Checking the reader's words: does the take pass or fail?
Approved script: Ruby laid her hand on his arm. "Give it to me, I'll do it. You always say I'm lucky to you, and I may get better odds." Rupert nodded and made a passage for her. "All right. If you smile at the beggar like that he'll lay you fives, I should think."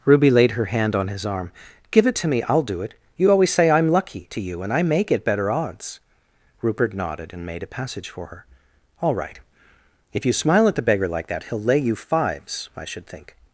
pass